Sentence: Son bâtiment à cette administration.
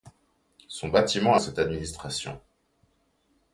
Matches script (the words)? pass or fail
pass